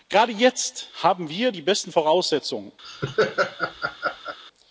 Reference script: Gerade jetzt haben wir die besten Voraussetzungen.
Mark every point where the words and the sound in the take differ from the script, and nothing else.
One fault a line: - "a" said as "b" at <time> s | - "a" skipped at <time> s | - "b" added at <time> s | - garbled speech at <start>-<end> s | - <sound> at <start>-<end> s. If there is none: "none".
- laugh at 2.8-4.4 s